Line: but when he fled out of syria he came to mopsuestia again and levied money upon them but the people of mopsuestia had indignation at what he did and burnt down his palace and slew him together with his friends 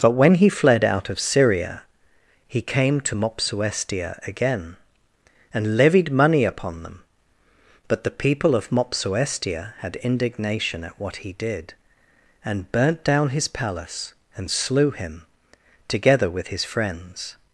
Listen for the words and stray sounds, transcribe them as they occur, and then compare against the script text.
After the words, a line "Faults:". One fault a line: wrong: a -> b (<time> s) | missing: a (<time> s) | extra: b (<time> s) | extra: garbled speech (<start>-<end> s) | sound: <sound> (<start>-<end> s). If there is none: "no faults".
but when he fled out of syria he came to mopsuestia again and levied money upon them but the people of mopsuestia had indignation at what he did and burnt down his palace and slew him together with his friends
Faults:
no faults